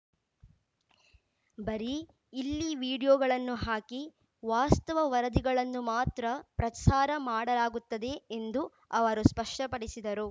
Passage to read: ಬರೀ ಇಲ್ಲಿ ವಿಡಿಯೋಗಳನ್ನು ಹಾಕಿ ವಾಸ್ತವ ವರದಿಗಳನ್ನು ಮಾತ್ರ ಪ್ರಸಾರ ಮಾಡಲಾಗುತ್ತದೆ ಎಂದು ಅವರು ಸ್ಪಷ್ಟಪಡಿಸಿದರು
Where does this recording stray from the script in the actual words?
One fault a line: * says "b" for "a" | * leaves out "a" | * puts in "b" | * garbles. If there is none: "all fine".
all fine